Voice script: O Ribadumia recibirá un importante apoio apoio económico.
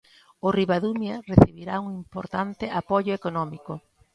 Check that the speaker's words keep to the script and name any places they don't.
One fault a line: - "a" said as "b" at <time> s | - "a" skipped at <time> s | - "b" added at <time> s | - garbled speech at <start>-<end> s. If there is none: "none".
- "apoio" skipped at 3.1 s